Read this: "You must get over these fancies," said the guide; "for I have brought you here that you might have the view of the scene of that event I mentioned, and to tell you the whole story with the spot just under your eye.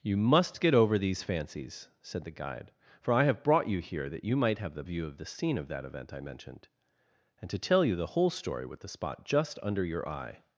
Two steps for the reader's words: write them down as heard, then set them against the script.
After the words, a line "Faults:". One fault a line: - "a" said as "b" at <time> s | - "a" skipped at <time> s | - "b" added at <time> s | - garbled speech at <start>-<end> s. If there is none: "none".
"You must get over these fancies," said the guide; "for I have brought you here that you might have the view of the scene of that event I mentioned, and to tell you the whole story with the spot just under your eye.
Faults:
none